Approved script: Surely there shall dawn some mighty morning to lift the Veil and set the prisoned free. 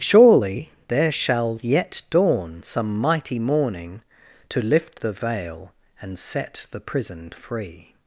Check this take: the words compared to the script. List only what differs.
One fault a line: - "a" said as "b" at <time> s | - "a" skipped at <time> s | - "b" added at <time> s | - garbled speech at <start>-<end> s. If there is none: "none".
- "yet" added at 1.6 s